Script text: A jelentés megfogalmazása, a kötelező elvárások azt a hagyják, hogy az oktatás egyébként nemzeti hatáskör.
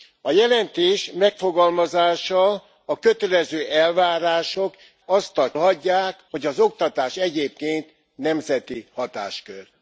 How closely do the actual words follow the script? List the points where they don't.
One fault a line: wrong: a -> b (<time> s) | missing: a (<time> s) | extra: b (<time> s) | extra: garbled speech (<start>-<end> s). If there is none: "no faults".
no faults